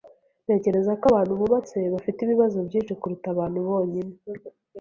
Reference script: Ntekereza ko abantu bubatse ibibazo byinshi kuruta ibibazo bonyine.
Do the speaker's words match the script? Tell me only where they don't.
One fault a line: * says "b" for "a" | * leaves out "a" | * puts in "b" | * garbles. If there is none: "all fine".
* puts in "bafite"
* says "abantu" for "ibibazo"